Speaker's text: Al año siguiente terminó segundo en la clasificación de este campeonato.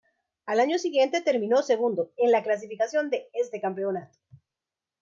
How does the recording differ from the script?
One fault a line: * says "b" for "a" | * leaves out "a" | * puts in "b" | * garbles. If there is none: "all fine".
all fine